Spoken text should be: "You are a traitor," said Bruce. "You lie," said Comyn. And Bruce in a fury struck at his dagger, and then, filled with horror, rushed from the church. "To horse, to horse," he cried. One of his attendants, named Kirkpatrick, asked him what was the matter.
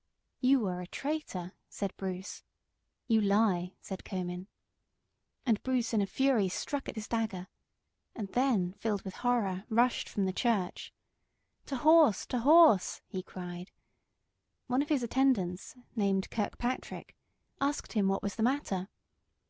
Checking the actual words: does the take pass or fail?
pass